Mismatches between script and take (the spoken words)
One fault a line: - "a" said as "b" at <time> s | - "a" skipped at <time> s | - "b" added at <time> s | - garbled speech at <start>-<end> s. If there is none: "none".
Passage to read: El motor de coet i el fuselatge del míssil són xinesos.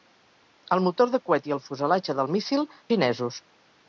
- "són" skipped at 2.7 s